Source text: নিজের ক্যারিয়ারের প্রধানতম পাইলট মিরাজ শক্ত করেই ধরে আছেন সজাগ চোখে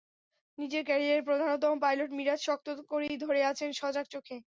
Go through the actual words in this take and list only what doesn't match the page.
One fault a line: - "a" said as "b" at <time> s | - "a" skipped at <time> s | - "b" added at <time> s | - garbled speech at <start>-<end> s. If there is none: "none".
none